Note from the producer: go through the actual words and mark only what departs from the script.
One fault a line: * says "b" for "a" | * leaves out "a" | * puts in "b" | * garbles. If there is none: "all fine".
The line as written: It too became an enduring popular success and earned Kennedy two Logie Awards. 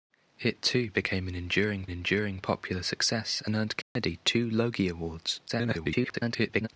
* puts in "enduring"
* garbles